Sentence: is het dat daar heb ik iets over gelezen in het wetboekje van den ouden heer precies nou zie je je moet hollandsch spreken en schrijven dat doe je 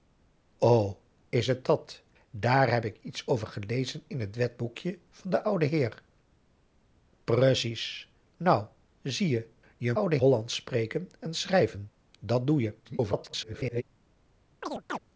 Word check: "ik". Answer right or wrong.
right